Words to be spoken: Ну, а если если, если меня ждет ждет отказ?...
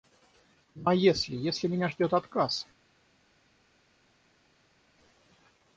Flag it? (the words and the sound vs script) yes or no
yes